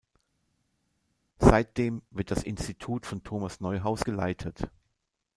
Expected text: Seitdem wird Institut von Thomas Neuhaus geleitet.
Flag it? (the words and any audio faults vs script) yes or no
yes